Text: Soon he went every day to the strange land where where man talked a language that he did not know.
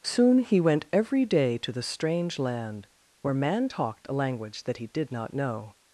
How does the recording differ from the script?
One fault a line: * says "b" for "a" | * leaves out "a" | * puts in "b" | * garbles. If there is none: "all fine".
* leaves out "where"